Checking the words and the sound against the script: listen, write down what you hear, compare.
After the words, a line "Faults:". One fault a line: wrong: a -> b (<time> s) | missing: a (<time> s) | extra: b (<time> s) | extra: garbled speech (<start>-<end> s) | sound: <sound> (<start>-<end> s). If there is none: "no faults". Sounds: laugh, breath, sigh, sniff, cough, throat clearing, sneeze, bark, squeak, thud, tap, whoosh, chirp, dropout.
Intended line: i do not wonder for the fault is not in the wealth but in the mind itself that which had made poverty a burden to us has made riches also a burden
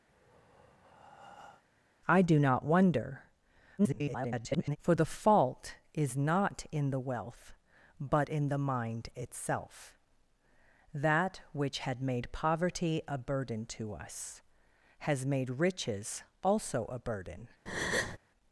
i do not wonder [garbled] for the fault is not in the wealth but in the mind itself that which had made poverty a burden to us has made riches also a burden
Faults:
sound: breath (0.1-1.6 s)
extra: garbled speech (3.8-4.8 s)
sound: breath (17.7-18.2 s)